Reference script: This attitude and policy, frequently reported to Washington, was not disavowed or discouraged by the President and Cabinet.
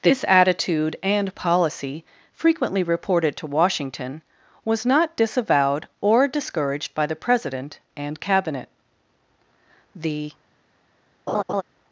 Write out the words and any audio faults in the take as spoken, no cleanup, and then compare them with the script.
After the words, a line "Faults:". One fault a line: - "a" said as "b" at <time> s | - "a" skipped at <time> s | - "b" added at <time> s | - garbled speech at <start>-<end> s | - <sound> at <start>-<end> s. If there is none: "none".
This attitude and policy, frequently reported to Washington, was not disavowed or discouraged by the President and Cabinet. The
Faults:
- "The" added at 9.9 s
- laugh at 11.3-11.6 s